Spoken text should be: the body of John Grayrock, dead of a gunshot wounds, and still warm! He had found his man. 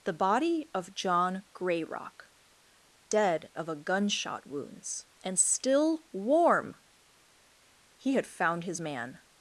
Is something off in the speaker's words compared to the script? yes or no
no